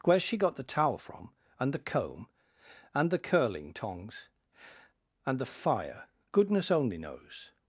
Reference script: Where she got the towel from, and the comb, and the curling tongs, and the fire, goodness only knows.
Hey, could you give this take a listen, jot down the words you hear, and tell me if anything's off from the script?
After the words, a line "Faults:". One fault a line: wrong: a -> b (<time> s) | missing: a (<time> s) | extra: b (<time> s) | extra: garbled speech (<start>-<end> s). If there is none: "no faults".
Where she got the towel from, and the comb, and the curling tongs, and the fire, goodness only knows.
Faults:
no faults